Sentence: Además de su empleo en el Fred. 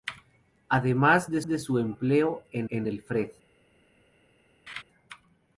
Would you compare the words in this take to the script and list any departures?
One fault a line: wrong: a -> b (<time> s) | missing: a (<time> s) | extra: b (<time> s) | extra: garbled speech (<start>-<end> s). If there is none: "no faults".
extra: de (1.5 s)
extra: en (2.7 s)